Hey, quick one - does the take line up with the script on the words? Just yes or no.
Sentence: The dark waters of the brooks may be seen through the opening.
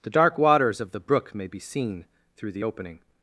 no